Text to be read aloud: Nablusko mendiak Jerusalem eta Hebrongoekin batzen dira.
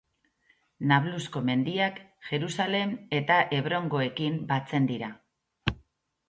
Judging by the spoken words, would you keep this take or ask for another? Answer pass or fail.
pass